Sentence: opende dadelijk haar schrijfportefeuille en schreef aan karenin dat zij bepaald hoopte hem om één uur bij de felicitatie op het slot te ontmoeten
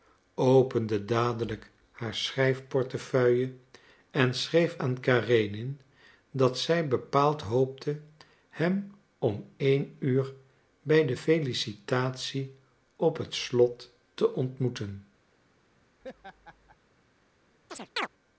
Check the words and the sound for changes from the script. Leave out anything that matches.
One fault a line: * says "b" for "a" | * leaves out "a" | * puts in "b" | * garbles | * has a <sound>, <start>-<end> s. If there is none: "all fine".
* has a laugh, 16.0-16.8 s
* has a chirp, 17.7-18.1 s